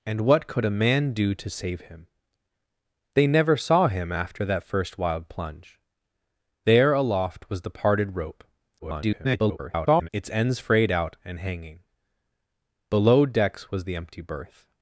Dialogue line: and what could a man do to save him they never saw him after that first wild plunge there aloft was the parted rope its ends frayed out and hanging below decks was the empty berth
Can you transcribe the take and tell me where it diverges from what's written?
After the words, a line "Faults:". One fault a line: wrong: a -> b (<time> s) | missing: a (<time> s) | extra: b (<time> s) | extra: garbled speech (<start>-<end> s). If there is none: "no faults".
and what could a man do to save him they never saw him after that first wild plunge there aloft was the parted rope [garbled] its ends frayed out and hanging below decks was the empty berth
Faults:
extra: garbled speech (8.8-10.1 s)